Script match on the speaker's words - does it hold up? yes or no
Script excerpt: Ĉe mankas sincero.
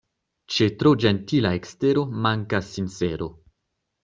no